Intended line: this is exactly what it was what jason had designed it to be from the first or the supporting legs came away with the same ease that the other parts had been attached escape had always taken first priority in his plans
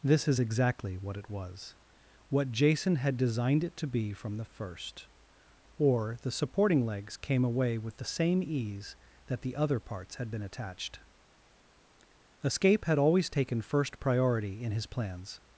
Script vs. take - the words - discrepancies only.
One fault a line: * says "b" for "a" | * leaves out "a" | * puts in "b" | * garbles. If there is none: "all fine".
all fine